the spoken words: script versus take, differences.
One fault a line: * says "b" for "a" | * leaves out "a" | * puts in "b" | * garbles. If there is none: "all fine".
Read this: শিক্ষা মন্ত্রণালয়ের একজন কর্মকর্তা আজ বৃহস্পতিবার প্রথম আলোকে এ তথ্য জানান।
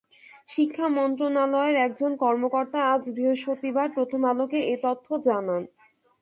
all fine